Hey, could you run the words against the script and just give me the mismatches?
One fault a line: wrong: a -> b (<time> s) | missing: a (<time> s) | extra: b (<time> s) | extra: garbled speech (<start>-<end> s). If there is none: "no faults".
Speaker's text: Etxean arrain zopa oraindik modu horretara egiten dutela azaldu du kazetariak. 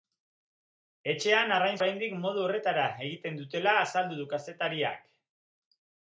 missing: zopa (1.8 s)